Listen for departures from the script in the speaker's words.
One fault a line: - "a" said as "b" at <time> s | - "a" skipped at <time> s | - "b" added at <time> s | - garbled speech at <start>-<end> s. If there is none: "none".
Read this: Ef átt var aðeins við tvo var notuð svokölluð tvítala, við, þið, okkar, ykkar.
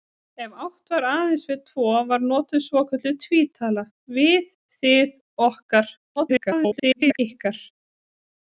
- garbled speech at 6.2-7.2 s